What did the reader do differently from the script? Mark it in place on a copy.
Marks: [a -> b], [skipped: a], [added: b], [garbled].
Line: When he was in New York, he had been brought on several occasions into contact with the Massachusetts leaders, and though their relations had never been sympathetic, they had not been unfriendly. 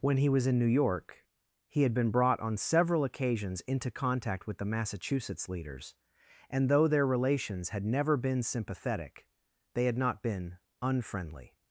When he was in New York, he had been brought on several occasions into contact with the Massachusetts leaders, and though their relations had never been sympathetic, they had not been unfriendly.